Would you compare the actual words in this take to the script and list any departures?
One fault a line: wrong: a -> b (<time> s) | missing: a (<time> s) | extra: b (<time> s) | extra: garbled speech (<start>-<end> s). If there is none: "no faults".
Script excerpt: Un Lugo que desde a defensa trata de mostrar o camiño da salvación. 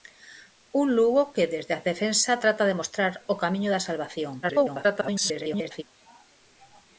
extra: garbled speech (4.4-5.8 s)